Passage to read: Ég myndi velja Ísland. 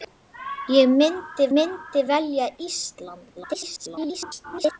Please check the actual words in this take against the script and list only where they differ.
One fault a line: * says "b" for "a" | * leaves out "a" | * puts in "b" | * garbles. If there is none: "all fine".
* puts in "myndi"
* garbles